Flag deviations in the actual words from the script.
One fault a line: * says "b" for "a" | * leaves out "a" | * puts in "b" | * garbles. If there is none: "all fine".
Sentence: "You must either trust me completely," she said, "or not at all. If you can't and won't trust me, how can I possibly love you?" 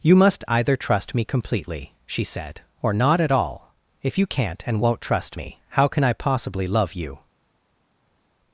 all fine